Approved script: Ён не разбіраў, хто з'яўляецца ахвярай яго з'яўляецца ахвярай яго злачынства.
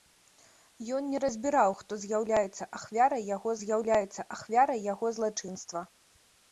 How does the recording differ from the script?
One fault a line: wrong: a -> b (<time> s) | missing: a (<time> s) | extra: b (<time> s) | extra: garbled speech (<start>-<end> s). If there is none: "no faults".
no faults